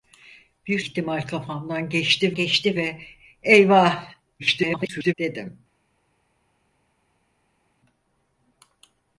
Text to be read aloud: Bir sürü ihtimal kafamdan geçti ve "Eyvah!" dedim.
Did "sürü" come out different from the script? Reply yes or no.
yes